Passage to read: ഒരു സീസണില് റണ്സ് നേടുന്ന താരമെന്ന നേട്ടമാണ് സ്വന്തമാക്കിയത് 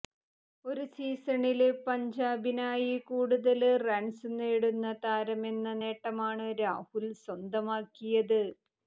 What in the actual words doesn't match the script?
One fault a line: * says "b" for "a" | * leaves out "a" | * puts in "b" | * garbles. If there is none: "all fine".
* puts in "പഞ്ചാബിനായി കൂടുതല്"
* puts in "രാഹുല്"